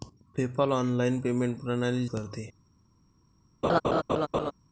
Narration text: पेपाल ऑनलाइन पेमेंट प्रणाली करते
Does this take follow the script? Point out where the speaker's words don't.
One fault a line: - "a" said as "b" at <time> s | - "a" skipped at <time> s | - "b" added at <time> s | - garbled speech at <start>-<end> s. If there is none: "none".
none